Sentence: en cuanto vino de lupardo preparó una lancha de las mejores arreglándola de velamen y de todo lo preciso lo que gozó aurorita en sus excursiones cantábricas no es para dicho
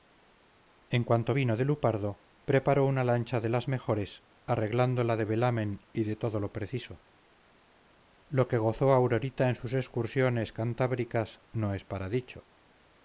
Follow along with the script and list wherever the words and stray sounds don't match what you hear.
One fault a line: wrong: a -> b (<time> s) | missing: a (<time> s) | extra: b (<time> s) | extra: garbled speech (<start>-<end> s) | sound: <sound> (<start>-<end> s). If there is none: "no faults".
no faults